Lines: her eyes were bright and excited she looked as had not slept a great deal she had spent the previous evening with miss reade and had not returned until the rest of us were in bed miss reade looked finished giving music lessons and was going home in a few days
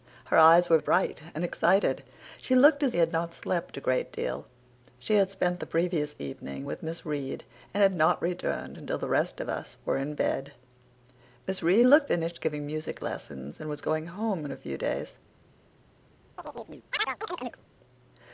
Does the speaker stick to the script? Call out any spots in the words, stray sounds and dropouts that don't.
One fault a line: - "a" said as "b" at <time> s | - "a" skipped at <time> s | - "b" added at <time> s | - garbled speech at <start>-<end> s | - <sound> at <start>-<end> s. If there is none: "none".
- chirp at 16.4-17.6 s